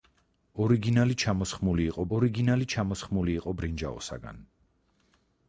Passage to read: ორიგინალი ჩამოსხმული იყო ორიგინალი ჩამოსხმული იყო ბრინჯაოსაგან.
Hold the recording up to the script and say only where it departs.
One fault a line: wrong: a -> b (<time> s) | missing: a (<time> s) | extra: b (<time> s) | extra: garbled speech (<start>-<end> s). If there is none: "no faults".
no faults